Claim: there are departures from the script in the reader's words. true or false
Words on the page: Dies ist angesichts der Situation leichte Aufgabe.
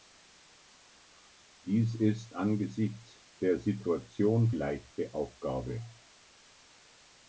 false